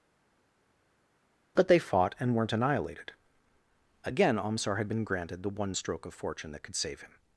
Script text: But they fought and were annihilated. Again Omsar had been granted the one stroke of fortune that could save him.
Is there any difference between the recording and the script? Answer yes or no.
yes